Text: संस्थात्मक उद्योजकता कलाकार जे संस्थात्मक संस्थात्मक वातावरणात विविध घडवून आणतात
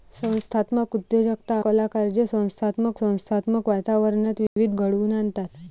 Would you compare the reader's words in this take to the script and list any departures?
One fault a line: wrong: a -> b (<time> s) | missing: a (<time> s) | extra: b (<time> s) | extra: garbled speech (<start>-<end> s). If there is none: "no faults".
no faults